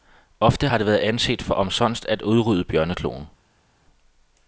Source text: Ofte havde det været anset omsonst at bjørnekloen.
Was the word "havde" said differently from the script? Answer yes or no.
yes